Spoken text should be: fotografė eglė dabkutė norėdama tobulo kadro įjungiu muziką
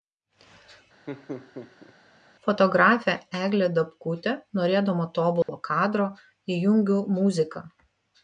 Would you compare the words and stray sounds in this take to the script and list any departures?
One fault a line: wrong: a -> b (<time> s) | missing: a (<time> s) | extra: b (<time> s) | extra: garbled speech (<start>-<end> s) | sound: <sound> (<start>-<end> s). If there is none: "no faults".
sound: laugh (1.1-1.9 s)
sound: dropout (5.4-5.5 s)